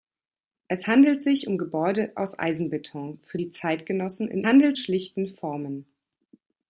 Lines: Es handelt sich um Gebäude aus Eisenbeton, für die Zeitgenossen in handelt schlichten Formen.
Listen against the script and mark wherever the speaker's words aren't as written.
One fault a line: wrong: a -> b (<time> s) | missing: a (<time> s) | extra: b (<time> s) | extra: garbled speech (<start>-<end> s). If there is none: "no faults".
no faults